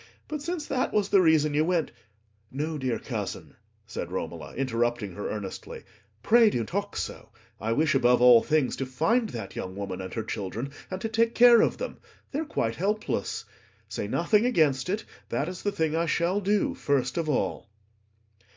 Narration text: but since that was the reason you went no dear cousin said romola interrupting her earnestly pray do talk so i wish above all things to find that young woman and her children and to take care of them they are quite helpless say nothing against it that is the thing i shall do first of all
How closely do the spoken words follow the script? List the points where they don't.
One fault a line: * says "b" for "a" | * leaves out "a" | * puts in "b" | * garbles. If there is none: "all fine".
all fine